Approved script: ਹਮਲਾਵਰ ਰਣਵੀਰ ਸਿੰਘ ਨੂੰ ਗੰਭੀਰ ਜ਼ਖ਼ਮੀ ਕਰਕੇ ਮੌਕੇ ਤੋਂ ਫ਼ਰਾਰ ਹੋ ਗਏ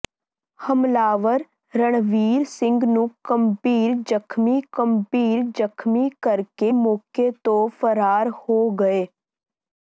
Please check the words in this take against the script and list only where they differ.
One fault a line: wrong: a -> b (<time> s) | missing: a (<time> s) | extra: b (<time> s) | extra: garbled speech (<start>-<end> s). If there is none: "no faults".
extra: ਗੰਭੀਰ ਜ਼ਖ਼ਮੀ (4.8 s)